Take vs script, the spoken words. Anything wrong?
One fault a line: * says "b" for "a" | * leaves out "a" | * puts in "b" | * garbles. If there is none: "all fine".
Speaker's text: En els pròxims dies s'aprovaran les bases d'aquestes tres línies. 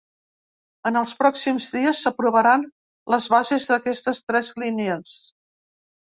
all fine